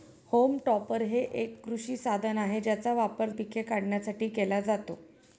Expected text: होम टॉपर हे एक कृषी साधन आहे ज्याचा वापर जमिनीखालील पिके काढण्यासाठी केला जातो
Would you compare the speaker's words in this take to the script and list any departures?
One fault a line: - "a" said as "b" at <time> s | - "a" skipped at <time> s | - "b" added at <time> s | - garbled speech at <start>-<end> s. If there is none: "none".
- "जमिनीखालील" skipped at 3.3 s